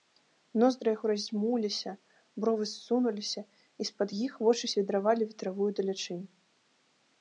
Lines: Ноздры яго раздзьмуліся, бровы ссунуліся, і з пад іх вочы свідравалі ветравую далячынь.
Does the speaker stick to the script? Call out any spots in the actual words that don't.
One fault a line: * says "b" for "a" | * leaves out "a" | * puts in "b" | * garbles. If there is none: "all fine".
all fine